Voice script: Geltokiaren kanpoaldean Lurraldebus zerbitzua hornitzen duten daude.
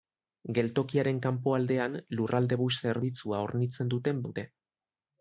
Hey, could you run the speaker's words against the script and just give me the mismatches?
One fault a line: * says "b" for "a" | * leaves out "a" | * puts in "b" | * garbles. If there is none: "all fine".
all fine